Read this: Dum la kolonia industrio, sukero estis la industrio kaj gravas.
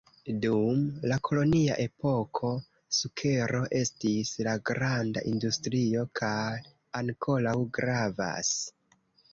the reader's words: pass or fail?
fail